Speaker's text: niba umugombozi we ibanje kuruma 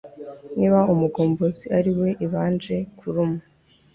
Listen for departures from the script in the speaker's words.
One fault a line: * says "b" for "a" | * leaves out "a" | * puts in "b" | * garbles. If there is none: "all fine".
* puts in "ari"